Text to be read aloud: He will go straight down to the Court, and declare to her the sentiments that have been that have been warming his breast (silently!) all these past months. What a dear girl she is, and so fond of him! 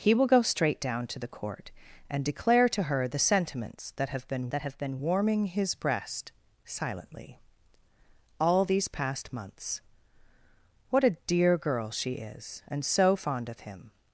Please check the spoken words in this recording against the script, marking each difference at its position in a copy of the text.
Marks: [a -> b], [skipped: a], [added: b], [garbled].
He will go straight down to the Court, and declare to her the sentiments that have been that have been warming his breast (silently!) all these past months. What a dear girl she is, and so fond of him!